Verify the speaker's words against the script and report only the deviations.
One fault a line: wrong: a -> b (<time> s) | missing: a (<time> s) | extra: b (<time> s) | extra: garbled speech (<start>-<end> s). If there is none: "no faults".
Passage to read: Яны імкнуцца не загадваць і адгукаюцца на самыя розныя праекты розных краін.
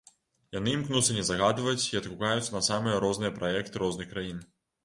no faults